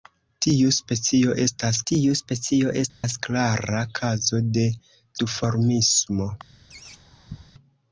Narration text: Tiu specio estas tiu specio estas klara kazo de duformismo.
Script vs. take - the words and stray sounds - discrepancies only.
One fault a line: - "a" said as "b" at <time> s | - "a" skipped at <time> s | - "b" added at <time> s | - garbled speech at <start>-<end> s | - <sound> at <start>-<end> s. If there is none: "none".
- dropout at 2.9-3.0 s
- laugh at 6.7-7.5 s